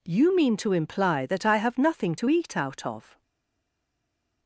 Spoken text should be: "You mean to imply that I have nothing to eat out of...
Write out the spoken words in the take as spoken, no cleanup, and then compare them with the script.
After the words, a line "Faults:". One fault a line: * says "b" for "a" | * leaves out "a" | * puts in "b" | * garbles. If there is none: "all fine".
"You mean to imply that I have nothing to eat out of...
Faults:
all fine